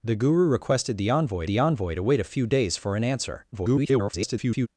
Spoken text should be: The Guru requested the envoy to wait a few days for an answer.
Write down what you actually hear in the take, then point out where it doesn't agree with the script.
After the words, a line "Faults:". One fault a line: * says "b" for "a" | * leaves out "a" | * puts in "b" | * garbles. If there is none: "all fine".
The Guru requested the envoy the envoy to wait a few days for an answer. [garbled]
Faults:
* puts in "the envoy"
* garbles